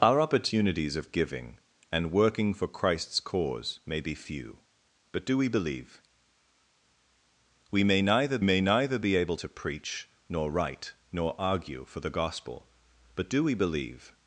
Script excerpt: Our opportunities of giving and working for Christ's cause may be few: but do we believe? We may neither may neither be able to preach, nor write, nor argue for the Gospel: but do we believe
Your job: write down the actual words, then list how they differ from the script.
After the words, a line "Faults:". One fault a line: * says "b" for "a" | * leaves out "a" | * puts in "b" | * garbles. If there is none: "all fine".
Our opportunities of giving and working for Christ's cause may be few: but do we believe? We may neither may neither be able to preach, nor write, nor argue for the Gospel: but do we believe
Faults:
all fine